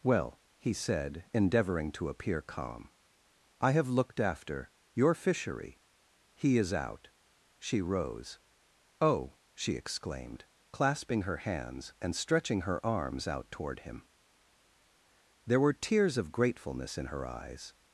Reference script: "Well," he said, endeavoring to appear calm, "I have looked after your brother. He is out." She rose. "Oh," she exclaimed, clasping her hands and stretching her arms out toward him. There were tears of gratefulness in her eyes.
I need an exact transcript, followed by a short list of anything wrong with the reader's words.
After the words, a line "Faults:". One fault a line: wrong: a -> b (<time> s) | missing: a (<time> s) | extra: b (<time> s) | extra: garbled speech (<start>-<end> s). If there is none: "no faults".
"Well," he said, endeavoring to appear calm, "I have looked after your fishery. He is out." She rose. "Oh," she exclaimed, clasping her hands and stretching her arms out toward him. There were tears of gratefulness in her eyes.
Faults:
wrong: brother -> fishery (5.1 s)